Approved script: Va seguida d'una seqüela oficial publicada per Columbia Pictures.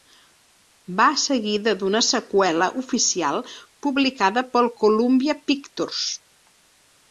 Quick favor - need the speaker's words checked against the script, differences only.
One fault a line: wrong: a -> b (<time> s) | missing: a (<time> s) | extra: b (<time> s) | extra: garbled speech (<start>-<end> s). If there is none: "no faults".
no faults